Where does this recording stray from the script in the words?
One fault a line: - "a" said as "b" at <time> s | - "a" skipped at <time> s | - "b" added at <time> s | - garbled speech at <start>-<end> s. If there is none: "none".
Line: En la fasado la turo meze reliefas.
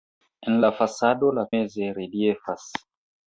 - "turo" skipped at 1.5 s